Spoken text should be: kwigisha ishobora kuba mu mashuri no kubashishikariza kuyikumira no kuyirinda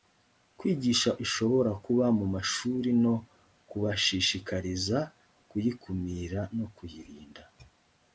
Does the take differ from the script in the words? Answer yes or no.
no